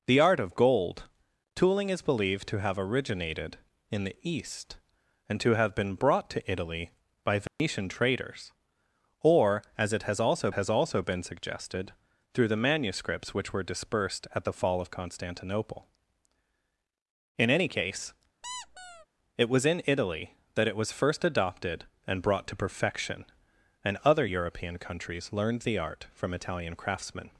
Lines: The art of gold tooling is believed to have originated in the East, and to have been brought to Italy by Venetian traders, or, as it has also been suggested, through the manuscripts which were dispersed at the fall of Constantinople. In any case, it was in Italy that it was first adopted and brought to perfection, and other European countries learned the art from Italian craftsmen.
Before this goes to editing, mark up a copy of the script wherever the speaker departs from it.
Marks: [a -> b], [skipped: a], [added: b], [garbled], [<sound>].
The art of gold tooling is believed to have originated in the East, and to have been brought to Italy by Venetian [dropout] traders, or, as it has also [added: has also] been suggested, through the manuscripts which were dispersed at the fall of Constantinople. In any case, [squeak] it was in Italy that it was first adopted and brought to perfection, and other European countries learned the art from Italian craftsmen.